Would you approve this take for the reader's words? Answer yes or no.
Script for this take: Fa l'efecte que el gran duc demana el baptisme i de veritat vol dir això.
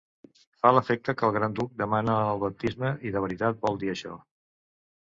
yes